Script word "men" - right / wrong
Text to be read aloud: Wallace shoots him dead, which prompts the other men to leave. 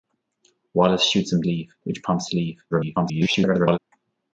wrong